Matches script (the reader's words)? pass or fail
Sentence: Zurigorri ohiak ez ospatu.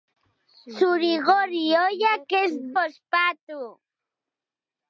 pass